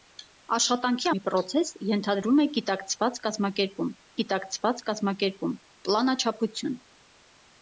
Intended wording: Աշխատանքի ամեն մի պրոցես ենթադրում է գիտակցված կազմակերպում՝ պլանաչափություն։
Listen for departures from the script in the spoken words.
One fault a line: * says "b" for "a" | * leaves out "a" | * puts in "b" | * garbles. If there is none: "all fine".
* leaves out "ամեն"
* puts in "գիտակցված կազմակերպում"